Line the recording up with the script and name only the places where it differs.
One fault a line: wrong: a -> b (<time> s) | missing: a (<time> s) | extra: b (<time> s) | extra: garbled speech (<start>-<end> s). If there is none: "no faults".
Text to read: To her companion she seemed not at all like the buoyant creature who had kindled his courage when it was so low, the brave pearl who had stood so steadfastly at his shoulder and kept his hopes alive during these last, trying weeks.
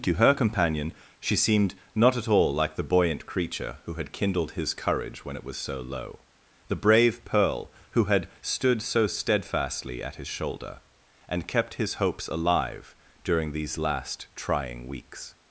no faults